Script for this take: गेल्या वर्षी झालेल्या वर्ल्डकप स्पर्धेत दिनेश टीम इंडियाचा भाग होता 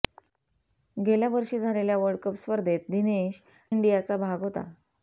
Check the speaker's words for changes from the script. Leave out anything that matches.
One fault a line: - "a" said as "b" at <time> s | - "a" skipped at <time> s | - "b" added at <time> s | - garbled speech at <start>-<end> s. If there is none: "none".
- "टीम" skipped at 3.3 s